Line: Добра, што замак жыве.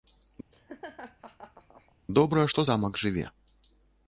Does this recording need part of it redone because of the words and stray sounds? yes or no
yes